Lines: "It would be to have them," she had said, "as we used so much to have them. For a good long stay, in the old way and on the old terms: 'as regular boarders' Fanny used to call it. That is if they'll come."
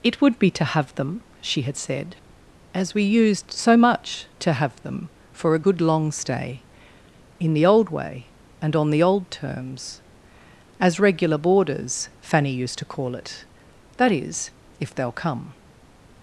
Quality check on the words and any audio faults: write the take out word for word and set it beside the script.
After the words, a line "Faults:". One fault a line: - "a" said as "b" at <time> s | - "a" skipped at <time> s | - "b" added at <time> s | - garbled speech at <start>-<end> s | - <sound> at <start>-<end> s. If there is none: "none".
"It would be to have them," she had said, "as we used so much to have them. For a good long stay, in the old way and on the old terms: 'as regular boarders' Fanny used to call it. That is if they'll come."
Faults:
none